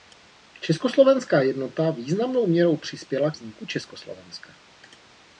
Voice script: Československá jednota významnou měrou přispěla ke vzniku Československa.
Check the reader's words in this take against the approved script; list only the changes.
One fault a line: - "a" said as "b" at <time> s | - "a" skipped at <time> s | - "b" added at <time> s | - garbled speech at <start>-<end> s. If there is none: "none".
- "ke" skipped at 3.3 s